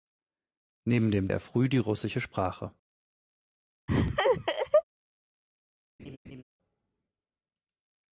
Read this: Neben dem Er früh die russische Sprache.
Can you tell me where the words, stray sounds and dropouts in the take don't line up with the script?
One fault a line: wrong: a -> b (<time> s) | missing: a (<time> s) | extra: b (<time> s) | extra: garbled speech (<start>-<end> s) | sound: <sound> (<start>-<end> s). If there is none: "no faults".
sound: laugh (3.9-4.8 s)
sound: laugh (6.0-6.4 s)